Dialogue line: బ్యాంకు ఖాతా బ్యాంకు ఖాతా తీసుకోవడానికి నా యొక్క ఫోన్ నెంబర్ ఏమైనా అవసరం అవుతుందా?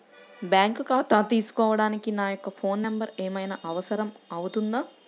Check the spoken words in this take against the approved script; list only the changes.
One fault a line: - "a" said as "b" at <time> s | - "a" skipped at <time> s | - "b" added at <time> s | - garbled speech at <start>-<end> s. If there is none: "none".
- "బ్యాంకు ఖాతా" skipped at 1.2 s